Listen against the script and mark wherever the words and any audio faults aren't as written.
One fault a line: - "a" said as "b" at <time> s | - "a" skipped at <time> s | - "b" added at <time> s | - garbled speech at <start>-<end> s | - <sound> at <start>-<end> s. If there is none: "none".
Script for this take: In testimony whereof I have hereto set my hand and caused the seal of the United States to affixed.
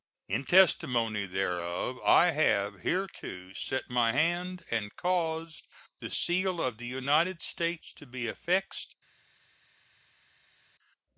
- "be" added at 8.1 s